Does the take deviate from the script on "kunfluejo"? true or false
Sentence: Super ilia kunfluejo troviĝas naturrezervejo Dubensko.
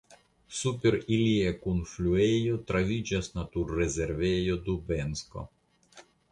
false